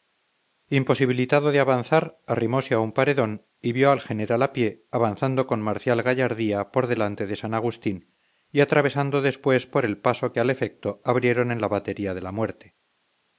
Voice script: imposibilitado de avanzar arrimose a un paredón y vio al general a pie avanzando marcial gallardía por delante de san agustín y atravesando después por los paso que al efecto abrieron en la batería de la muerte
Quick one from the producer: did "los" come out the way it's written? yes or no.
no